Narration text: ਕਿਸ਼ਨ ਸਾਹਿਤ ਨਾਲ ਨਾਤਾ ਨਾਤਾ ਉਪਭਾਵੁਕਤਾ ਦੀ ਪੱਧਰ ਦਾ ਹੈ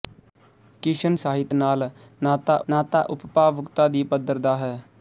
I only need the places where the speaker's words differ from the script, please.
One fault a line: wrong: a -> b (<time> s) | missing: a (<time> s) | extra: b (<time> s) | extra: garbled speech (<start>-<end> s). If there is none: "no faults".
no faults